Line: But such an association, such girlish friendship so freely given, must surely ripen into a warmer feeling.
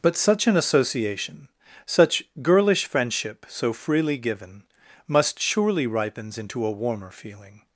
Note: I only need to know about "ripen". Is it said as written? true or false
false